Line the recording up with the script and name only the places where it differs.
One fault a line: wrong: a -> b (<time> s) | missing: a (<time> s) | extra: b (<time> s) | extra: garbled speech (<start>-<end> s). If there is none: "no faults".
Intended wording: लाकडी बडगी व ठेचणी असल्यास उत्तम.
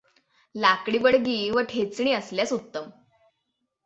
no faults